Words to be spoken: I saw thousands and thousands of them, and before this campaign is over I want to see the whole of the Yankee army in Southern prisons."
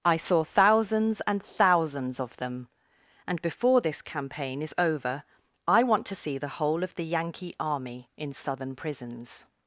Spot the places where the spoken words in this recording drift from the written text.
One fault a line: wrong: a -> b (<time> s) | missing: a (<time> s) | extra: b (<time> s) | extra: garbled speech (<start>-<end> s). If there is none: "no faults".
no faults